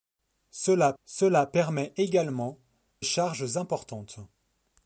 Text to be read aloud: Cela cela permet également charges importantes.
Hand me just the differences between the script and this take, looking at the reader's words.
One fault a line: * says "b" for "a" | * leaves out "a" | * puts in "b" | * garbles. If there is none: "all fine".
all fine